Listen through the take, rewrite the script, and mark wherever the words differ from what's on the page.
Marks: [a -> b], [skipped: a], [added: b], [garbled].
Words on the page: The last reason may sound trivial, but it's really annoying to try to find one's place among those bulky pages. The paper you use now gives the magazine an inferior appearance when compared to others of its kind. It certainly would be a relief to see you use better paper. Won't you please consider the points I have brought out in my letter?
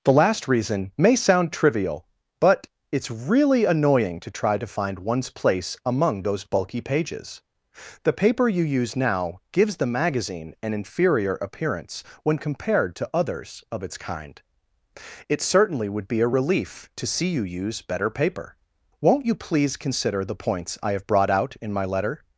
The last reason may sound trivial, but it's really annoying to try to find one's place among those bulky pages. The paper you use now gives the magazine an inferior appearance when compared to others of its kind. It certainly would be a relief to see you use better paper. Won't you please consider the points I have brought out in my letter?